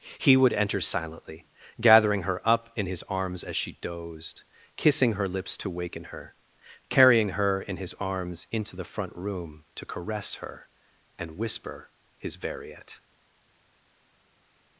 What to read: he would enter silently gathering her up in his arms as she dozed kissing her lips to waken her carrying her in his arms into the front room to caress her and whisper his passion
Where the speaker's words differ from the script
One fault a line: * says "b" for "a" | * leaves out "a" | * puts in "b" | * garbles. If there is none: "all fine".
* says "variet" for "passion"